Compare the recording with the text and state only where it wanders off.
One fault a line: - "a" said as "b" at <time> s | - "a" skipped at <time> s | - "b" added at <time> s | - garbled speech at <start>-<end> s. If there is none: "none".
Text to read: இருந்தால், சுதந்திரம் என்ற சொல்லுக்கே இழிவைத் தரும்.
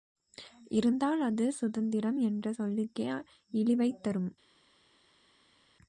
- "அது" added at 1.2 s